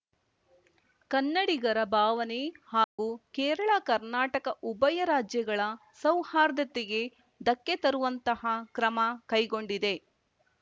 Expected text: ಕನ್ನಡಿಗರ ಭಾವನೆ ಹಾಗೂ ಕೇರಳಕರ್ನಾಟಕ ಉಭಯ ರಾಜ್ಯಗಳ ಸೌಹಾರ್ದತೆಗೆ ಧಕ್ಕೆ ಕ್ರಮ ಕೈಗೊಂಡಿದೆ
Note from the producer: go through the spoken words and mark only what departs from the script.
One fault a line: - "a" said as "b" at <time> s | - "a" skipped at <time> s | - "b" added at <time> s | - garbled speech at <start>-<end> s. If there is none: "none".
- "ತರುವಂತಹ" added at 7.8 s